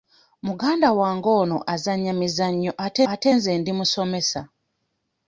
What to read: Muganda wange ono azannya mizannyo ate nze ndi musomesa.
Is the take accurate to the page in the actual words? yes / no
no